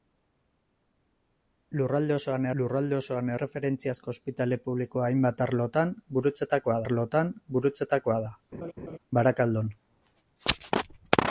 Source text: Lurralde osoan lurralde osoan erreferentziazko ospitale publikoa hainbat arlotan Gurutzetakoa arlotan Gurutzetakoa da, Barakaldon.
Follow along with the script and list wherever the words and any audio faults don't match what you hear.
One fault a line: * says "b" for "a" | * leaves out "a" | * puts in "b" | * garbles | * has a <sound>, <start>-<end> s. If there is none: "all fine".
* has a laugh, 8.5-9.0 s